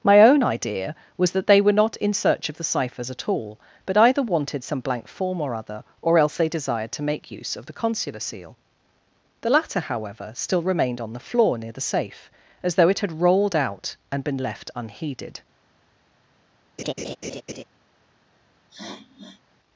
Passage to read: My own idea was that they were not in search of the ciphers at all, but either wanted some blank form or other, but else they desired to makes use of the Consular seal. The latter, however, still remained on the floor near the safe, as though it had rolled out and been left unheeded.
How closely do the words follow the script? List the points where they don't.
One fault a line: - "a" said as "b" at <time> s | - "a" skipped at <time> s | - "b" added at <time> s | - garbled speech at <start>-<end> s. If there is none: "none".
- "but" said as "or" at 6.0 s
- "makes" said as "make" at 7.0 s